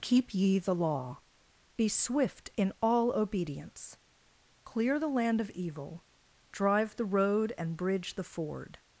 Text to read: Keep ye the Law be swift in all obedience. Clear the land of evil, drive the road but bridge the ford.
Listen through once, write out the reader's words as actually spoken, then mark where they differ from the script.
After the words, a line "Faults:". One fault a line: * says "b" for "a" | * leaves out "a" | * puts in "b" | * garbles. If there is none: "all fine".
Keep ye the Law be swift in all obedience. Clear the land of evil, drive the road and bridge the ford.
Faults:
* says "and" for "but"